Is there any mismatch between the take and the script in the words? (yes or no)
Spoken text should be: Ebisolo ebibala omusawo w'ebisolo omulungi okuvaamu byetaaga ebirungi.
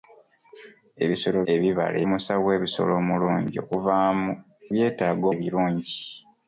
no